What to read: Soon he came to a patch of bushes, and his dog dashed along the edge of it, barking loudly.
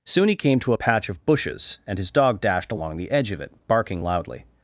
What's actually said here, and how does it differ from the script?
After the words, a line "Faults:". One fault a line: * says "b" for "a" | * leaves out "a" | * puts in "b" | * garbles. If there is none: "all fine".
Soon he came to a patch of bushes, and his dog dashed along the edge of it, barking loudly.
Faults:
all fine